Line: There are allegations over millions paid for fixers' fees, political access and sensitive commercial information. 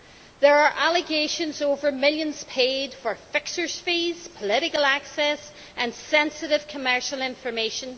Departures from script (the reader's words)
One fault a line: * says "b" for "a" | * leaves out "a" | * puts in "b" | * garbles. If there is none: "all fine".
all fine